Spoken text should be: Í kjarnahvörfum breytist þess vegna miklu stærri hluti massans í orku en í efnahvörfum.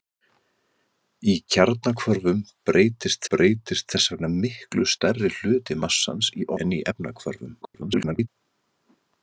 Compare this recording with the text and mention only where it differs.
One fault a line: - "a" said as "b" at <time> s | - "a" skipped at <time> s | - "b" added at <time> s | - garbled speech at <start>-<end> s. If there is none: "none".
- "breytist" added at 3.3 s
- "orku" skipped at 6.5 s
- garbled speech at 7.6-8.3 s